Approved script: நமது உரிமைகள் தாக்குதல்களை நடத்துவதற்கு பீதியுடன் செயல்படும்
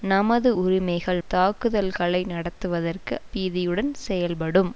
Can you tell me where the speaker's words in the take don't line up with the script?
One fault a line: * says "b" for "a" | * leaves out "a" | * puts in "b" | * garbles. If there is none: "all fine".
all fine